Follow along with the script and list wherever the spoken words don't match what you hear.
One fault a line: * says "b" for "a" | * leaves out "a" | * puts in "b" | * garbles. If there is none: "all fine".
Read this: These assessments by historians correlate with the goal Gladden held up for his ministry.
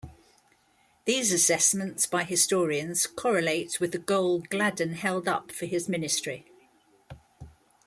all fine